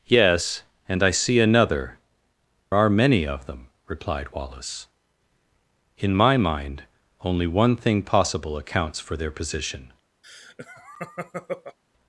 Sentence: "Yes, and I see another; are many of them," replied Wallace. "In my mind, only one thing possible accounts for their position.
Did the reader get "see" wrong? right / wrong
right